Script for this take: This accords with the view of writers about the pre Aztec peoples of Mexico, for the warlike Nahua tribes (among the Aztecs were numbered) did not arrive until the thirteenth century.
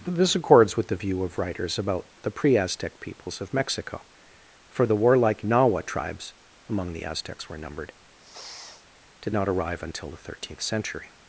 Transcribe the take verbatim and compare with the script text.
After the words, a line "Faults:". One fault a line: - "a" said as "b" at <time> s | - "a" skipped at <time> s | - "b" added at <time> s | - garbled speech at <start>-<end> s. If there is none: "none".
This accords with the view of writers about the pre Aztec peoples of Mexico, for the warlike Nahua tribes (among the Aztecs were numbered) did not arrive until the thirteenth century.
Faults:
none